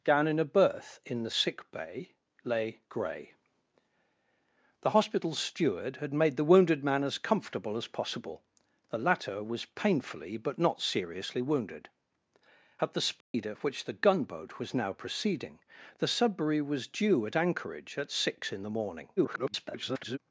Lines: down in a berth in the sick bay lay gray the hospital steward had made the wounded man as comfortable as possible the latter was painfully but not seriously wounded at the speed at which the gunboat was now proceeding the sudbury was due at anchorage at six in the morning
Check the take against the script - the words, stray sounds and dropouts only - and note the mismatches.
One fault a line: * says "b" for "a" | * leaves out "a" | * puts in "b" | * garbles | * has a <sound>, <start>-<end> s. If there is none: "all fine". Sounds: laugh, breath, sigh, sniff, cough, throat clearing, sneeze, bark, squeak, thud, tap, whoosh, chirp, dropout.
* has a dropout, 13.2-13.3 s
* garbles